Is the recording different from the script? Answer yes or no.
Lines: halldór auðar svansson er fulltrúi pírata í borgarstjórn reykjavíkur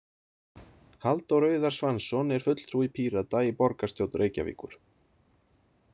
no